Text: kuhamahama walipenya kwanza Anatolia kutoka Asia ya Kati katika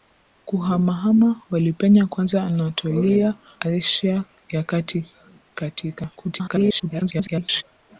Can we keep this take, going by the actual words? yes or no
no